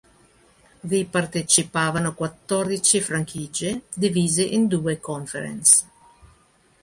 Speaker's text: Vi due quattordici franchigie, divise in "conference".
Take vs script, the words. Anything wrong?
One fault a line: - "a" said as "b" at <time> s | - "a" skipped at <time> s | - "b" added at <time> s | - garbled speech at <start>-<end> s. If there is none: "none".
- "due" said as "partecipavano" at 1.1 s
- "due" added at 4.7 s